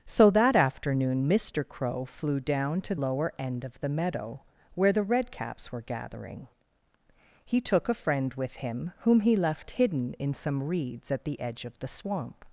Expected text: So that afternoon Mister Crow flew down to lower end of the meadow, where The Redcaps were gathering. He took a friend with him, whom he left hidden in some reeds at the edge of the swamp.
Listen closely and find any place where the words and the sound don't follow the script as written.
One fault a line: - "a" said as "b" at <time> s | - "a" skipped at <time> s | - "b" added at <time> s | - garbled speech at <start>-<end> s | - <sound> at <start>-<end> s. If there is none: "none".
none